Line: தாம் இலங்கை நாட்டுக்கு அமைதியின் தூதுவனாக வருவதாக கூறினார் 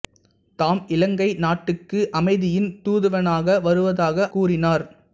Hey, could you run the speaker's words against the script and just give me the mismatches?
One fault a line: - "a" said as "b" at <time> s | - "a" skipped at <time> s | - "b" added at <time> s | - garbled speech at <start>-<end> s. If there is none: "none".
none